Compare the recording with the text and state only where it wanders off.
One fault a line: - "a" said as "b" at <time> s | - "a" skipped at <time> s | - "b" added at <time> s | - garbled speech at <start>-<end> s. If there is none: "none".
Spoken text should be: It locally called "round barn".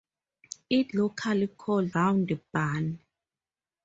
none